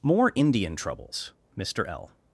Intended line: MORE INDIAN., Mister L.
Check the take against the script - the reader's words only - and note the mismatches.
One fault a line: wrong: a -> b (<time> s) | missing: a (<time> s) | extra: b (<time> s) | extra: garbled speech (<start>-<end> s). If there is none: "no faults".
extra: TROUBLES (0.8 s)